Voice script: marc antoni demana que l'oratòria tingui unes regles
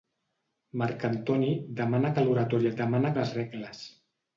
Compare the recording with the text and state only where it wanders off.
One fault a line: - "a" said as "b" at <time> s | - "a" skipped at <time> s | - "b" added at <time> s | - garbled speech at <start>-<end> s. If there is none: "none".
- "tingui" said as "demana" at 2.8 s